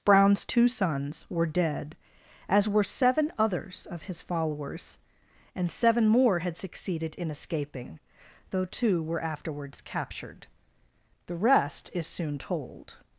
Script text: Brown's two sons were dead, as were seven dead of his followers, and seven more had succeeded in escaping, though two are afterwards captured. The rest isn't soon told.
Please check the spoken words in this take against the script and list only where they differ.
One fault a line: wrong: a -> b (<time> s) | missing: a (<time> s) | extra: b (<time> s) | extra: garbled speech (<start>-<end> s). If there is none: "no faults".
wrong: dead -> others (3.4 s)
wrong: are -> were (9.0 s)
wrong: isn't -> is (11.9 s)